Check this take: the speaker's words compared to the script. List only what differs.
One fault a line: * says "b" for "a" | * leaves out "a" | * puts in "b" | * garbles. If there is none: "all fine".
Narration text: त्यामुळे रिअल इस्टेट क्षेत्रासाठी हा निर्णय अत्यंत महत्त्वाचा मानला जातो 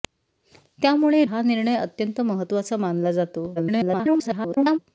* leaves out "रिअल इस्टेट क्षेत्रासाठी"
* garbles